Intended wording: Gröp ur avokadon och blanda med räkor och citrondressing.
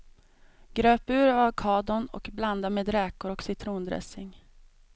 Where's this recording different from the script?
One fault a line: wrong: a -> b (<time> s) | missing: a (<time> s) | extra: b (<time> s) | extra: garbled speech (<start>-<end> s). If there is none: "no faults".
no faults